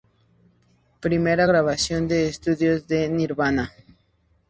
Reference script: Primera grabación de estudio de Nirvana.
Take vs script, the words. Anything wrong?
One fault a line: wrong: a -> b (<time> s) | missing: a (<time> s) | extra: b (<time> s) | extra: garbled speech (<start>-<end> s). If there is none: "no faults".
no faults